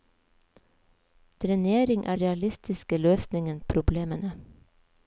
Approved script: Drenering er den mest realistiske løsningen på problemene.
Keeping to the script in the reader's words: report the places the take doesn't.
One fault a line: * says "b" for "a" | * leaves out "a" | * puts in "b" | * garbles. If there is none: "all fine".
* leaves out "den mest"
* leaves out "på"